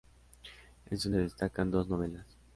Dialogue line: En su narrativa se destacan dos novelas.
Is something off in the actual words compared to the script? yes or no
yes